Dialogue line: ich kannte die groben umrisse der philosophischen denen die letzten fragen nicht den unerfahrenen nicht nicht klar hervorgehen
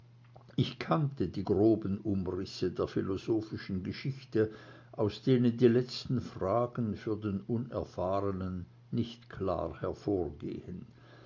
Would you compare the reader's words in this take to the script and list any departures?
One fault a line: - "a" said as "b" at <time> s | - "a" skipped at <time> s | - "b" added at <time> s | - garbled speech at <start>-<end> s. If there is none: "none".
- "geschichte aus" added at 3.8 s
- "nicht" said as "für" at 6.9 s
- "nicht" skipped at 9.3 s